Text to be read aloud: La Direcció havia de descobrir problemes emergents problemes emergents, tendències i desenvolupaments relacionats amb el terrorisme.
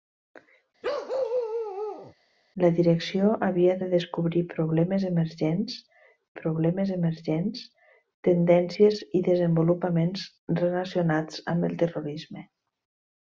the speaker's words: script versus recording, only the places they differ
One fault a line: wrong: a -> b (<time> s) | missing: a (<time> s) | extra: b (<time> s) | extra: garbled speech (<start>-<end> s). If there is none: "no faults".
no faults